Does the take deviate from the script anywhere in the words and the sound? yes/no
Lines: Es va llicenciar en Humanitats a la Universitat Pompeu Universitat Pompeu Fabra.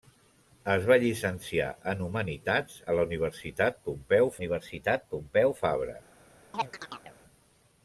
yes